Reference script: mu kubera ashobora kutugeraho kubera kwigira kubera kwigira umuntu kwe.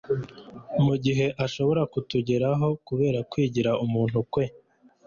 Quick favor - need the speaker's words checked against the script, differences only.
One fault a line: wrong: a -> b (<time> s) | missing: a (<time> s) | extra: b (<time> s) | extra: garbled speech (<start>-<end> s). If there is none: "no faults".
wrong: kubera -> gihe (1.0 s)
missing: kubera kwigira (3.7 s)